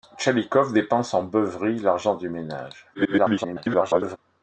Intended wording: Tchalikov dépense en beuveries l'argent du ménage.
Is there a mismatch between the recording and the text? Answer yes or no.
yes